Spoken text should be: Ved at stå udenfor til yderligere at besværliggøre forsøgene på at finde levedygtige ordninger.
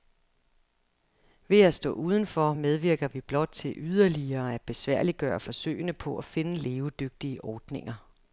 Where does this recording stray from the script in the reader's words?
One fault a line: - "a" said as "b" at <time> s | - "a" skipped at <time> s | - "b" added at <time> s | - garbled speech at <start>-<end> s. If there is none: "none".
- "medvirker vi blot" added at 2.5 s